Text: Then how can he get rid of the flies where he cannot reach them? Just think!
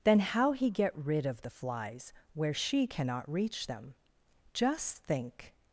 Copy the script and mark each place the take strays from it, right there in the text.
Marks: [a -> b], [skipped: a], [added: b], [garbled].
Then how [skipped: can] he get rid of the flies where [he -> she] cannot reach them? Just think!